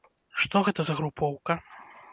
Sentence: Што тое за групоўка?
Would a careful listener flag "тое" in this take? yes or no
yes